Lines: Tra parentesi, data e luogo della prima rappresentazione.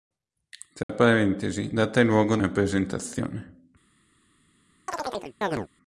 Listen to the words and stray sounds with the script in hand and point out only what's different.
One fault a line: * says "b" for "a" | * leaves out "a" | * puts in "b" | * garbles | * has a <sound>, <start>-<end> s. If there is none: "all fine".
* has a dropout, 0.8-0.9 s
* leaves out "della prima"
* has a chirp, 4.9-5.7 s